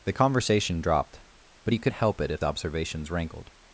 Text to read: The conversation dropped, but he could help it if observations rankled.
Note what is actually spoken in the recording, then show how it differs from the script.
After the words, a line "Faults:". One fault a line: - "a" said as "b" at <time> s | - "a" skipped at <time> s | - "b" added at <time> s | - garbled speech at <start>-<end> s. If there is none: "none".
The conversation dropped, but he could help it if observations rankled.
Faults:
none